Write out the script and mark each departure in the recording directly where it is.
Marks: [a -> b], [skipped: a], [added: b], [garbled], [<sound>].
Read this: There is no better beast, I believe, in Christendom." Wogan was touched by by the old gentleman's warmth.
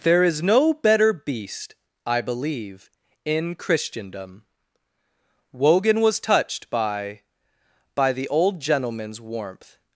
There is no better beast, I believe, in Christendom." Wogan was touched by by the old gentleman's warmth.